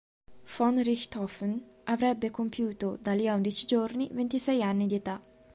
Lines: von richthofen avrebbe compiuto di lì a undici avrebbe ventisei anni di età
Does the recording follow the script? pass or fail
fail